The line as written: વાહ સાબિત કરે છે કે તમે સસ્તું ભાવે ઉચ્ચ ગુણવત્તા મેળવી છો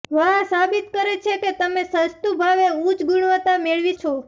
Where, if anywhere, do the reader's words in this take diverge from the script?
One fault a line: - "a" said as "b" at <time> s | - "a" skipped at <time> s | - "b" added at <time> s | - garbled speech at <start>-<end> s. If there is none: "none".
none